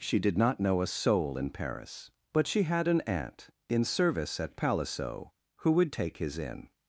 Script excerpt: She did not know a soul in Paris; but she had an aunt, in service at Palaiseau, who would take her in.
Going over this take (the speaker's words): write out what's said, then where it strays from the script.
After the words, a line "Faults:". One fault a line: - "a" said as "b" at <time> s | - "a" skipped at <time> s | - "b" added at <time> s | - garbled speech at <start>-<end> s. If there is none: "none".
She did not know a soul in Paris; but she had an aunt, in service at Palaiseau, who would take his in.
Faults:
- "her" said as "his" at 6.2 s